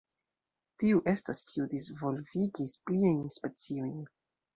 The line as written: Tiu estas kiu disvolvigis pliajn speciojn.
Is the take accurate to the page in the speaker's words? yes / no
yes